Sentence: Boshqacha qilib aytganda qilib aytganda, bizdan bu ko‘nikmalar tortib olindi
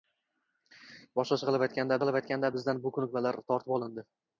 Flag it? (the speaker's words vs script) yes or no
no